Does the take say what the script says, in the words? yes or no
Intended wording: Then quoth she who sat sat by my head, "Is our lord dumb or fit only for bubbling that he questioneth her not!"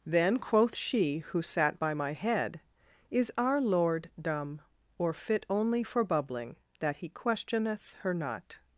no